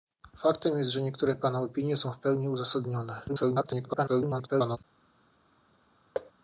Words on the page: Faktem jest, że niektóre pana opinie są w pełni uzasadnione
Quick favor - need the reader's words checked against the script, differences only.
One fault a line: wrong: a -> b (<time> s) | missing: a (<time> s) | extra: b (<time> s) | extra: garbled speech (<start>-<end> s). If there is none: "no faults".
extra: garbled speech (3.3-4.8 s)